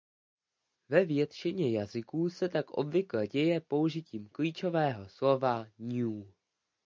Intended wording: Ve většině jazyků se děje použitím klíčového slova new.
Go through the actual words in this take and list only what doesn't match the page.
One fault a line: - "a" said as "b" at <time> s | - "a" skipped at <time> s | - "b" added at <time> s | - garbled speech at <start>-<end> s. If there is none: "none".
- "tak obvykle" added at 2.5 s